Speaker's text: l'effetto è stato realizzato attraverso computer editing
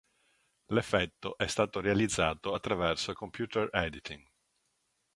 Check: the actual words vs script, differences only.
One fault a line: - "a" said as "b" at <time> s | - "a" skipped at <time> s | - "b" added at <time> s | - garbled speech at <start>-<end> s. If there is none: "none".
none